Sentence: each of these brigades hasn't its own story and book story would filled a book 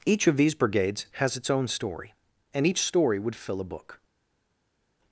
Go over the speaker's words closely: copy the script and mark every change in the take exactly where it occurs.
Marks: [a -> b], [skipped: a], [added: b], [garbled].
each of these brigades [hasn't -> has] its own story and [book -> each] story would [filled -> fill] a book